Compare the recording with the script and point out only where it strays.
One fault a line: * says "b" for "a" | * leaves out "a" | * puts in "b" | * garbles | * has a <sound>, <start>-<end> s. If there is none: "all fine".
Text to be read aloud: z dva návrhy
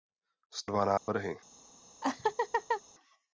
* has a dropout, 1.0-1.1 s
* has a laugh, 2.0-2.8 s